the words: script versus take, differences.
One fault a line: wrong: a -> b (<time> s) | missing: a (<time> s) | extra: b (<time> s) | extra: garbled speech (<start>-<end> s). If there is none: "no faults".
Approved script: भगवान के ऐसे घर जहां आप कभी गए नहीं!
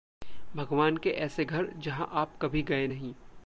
no faults